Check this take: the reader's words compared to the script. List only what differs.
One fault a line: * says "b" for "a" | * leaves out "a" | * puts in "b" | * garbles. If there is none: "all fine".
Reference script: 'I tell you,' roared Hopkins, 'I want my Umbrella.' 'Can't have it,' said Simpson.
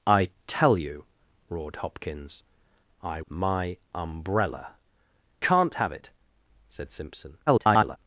* leaves out "want"
* garbles